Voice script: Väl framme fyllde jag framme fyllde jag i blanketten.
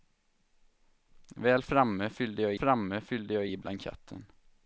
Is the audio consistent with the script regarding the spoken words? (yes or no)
yes